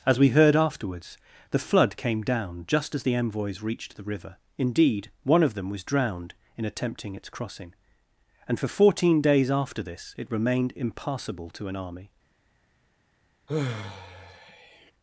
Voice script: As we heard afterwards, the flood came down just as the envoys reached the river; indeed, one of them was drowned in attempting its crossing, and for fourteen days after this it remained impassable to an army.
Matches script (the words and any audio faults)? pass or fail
fail